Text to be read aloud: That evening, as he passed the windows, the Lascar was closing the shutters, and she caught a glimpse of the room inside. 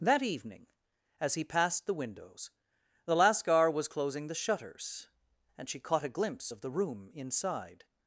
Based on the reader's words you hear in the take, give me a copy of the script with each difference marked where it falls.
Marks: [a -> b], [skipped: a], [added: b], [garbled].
That evening, as he passed the windows, the Lascar was closing the shutters, and she caught a glimpse of the room inside.